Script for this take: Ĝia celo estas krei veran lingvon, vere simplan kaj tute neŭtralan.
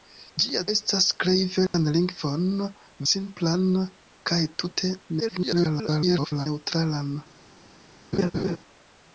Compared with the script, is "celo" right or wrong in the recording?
wrong